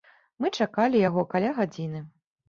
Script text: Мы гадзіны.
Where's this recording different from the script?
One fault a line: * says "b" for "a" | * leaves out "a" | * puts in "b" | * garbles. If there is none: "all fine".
* puts in "чакалі яго каля"